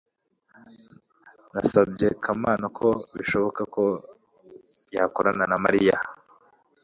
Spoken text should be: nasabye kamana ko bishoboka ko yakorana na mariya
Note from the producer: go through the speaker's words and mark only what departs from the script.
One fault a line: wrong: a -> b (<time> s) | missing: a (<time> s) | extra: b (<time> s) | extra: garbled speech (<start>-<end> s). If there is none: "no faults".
no faults